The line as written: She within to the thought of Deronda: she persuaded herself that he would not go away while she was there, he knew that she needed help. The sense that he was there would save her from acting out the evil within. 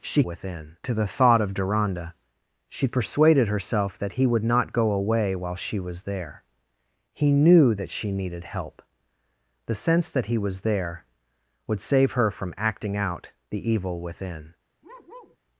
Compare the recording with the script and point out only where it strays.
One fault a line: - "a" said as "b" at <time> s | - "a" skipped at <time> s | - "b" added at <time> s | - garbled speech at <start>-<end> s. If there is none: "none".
none